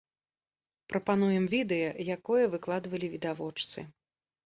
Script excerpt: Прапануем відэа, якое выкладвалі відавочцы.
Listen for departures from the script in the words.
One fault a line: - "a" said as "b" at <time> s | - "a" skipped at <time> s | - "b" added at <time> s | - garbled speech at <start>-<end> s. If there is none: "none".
none